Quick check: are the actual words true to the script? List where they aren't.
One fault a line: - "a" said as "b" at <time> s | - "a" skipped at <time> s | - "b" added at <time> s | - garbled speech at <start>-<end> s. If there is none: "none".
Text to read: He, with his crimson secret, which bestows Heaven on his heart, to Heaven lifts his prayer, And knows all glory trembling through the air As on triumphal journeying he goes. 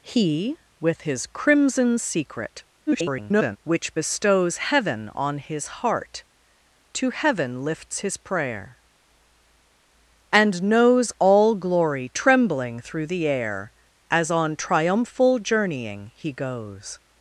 - garbled speech at 2.9-3.6 s